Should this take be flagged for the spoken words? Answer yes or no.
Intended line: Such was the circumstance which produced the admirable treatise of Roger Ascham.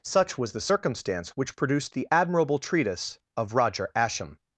no